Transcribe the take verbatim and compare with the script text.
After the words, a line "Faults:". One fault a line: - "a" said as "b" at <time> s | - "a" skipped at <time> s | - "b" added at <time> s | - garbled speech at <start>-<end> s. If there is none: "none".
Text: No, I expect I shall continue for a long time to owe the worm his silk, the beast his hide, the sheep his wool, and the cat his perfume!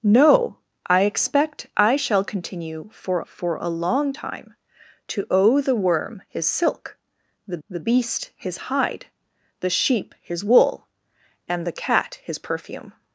No, I expect I shall continue for for a long time to owe the worm his silk, the the beast his hide, the sheep his wool, and the cat his perfume!
Faults:
- "for" added at 3.2 s
- "the" added at 7.7 s